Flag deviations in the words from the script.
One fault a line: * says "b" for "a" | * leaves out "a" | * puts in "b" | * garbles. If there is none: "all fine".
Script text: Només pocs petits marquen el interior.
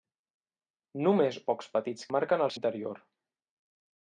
all fine